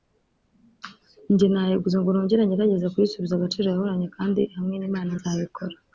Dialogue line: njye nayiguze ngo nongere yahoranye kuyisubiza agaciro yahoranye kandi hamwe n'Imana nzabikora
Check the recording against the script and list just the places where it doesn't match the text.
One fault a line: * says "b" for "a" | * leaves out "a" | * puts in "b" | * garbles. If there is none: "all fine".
* says "ngerageze" for "yahoranye"